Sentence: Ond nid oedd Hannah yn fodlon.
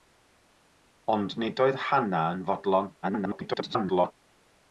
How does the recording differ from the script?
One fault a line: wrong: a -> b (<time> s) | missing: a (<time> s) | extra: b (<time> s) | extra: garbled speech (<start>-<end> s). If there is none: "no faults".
extra: garbled speech (3.0-4.1 s)